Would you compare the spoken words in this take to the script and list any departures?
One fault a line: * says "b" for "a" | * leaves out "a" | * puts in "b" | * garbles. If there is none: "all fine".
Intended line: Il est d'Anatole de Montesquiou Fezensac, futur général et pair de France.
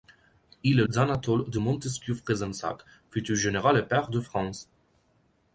all fine